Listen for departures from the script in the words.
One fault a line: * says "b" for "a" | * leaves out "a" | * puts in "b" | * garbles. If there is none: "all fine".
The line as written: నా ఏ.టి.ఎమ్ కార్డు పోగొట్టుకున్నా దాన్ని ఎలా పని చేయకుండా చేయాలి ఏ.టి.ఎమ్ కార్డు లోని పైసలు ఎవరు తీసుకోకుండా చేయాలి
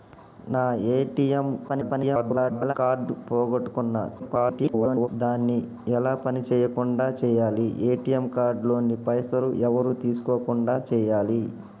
* garbles
* garbles